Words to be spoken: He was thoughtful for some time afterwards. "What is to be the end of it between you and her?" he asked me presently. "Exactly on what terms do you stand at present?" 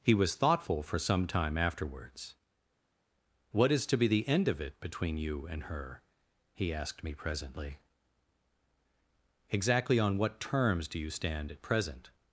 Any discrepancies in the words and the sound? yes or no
no